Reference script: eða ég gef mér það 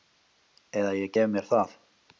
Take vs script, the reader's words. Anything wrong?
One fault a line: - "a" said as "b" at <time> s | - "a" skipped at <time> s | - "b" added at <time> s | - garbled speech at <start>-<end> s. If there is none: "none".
none